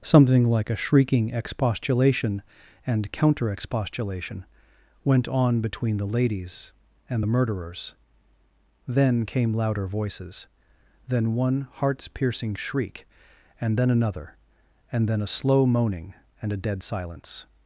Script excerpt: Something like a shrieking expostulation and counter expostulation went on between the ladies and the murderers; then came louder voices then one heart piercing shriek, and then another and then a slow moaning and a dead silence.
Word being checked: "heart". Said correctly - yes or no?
no